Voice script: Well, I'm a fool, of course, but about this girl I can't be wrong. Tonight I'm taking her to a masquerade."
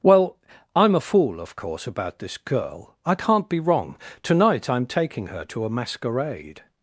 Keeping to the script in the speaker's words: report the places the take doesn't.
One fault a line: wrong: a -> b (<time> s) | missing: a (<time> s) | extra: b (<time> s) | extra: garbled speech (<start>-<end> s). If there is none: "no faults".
missing: but (1.9 s)